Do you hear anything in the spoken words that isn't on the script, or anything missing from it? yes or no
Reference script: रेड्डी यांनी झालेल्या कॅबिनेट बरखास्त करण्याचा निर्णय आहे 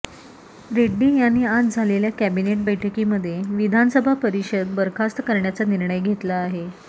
yes